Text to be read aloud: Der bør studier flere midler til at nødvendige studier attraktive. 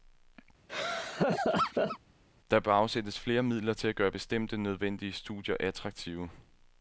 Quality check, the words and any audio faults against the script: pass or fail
fail